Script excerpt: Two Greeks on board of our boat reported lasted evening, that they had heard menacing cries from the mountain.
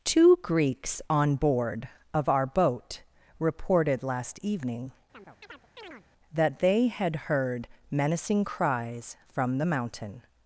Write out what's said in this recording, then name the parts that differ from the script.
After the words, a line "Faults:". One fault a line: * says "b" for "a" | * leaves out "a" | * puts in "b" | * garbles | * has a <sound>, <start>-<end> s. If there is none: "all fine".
Two Greeks on board of our boat reported last evening, that they had heard menacing cries from the mountain.
Faults:
* says "last" for "lasted"
* has a chirp, 5.1-6.1 s